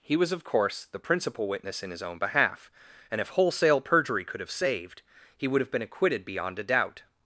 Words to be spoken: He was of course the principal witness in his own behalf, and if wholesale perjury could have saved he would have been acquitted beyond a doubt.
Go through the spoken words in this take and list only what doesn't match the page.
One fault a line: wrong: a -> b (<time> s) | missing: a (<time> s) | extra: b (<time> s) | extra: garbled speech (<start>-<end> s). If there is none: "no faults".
no faults